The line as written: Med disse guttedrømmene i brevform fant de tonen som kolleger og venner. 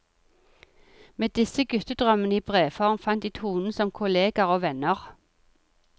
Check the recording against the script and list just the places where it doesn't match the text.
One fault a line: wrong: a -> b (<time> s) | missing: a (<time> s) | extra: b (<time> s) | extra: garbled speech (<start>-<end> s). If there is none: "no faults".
no faults